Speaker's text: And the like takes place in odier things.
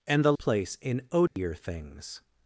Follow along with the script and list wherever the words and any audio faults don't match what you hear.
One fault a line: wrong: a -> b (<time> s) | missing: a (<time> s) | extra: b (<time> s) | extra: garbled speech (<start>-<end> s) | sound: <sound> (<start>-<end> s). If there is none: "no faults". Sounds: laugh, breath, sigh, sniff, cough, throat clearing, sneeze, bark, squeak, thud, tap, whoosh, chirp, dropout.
missing: like takes (0.3 s)
sound: dropout (1.3-1.4 s)